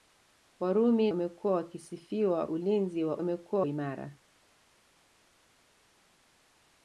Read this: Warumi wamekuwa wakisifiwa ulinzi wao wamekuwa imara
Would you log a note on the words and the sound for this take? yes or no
no